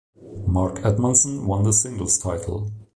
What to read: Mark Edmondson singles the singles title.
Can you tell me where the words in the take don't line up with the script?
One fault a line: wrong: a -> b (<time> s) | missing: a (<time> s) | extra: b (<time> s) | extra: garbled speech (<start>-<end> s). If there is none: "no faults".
wrong: singles -> won (1.4 s)